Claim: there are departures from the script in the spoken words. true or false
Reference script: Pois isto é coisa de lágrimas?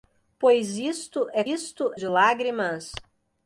true